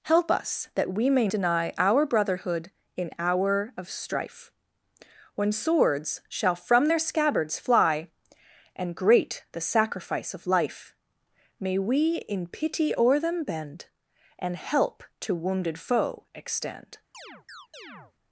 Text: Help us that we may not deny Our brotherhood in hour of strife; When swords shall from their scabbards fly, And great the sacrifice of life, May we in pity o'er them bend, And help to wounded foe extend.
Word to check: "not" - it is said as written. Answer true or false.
false